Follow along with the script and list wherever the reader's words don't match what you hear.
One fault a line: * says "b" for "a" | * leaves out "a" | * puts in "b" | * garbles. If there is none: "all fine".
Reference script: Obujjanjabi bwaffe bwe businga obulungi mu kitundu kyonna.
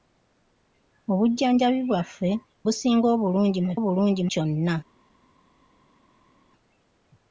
* leaves out "bwe"
* says "obulungi" for "kitundu"